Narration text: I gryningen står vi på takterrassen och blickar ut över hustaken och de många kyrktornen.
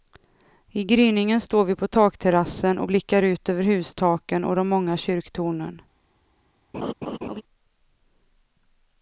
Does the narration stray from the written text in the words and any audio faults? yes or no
yes